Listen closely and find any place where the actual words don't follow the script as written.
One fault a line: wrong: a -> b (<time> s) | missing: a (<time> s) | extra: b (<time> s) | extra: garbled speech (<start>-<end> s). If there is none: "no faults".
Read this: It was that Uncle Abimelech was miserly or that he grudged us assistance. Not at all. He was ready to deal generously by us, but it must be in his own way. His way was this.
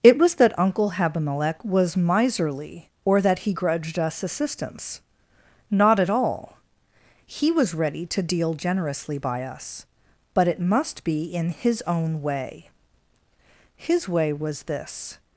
no faults